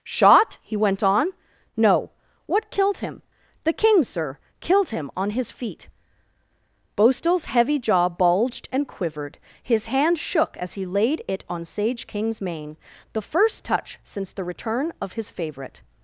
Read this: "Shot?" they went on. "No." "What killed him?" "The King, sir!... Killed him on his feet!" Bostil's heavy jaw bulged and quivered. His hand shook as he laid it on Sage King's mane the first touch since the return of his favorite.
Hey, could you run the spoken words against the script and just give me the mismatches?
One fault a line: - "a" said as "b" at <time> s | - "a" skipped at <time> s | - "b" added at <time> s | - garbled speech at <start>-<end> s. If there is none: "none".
- "they" said as "he" at 0.6 s